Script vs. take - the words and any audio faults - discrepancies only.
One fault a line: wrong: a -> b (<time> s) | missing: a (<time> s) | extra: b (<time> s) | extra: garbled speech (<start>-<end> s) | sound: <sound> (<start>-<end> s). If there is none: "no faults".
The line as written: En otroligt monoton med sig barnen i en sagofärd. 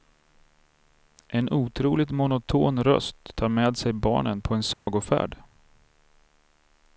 extra: röst tar (2.8 s)
wrong: i -> på (4.4 s)
sound: dropout (4.7-4.9 s)